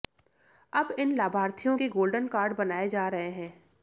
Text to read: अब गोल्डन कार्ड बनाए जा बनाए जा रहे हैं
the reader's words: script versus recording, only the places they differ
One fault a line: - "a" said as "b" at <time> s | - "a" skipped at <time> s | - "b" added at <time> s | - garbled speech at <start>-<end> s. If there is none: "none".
- "इन लाभार्थियों के" added at 1.0 s
- "बनाए जा" skipped at 3.1 s